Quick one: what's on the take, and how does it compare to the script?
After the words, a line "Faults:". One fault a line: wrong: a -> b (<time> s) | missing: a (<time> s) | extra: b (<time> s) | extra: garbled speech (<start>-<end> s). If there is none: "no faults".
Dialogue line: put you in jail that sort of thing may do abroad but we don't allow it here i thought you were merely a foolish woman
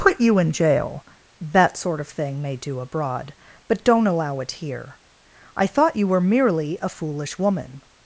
put you in jail that sort of thing may do abroad but don't allow it here i thought you were merely a foolish woman
Faults:
missing: we (3.8 s)